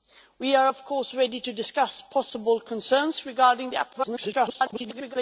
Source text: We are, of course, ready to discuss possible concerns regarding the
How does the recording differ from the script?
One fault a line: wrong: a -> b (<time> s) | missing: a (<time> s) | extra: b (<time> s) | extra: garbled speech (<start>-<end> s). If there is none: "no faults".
extra: garbled speech (3.9-5.2 s)